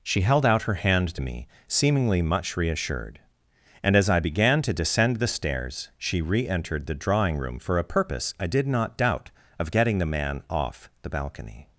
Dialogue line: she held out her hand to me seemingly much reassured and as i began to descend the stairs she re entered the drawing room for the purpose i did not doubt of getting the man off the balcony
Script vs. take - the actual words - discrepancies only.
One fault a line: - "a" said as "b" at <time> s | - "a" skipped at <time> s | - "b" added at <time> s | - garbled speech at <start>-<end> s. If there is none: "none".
- "the" said as "a" at 7.8 s